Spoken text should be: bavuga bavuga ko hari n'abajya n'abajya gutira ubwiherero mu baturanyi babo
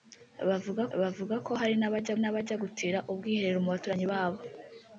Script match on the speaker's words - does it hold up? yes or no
yes